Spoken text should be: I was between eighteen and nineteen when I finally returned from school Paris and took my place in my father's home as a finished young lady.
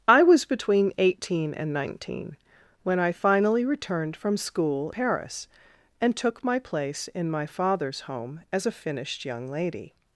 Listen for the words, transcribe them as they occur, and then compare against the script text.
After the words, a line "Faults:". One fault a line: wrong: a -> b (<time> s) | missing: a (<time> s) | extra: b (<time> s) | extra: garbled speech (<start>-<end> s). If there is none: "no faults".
I was between eighteen and nineteen when I finally returned from school Paris and took my place in my father's home as a finished young lady.
Faults:
no faults